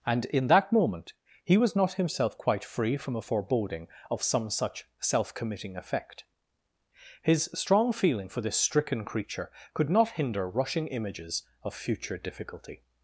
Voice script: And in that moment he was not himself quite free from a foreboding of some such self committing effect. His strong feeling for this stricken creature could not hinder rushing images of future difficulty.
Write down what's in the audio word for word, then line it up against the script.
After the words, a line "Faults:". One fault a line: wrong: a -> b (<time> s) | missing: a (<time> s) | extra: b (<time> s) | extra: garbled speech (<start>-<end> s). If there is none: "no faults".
And in that moment he was not himself quite free from a foreboding of some such self committing effect. His strong feeling for this stricken creature could not hinder rushing images of future difficulty.
Faults:
no faults